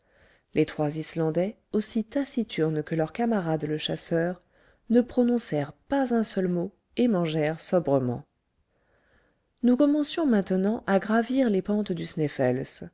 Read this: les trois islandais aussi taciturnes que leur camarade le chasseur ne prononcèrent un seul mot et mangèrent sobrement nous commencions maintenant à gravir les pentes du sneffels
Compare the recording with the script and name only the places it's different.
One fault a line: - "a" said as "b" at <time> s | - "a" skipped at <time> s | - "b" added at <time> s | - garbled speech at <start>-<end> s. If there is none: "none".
- "pas" added at 5.7 s